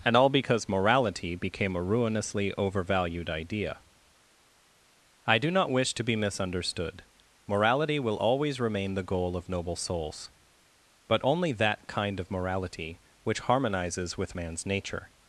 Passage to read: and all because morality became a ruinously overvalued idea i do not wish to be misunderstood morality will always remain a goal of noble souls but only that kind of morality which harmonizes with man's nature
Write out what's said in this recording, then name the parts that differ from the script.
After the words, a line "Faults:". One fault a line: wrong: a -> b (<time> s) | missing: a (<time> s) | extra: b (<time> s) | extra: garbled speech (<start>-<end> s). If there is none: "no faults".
and all because morality became a ruinously overvalued idea i do not wish to be misunderstood morality will always remain the goal of noble souls but only that kind of morality which harmonizes with man's nature
Faults:
wrong: a -> the (8.9 s)